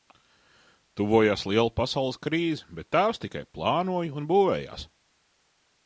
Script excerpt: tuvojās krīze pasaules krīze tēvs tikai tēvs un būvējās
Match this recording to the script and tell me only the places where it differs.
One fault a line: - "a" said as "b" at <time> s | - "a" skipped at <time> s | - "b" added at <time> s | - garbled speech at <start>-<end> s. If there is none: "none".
- "krīze" said as "liela" at 1.5 s
- "bet" added at 2.8 s
- "tēvs" said as "plānoja" at 3.6 s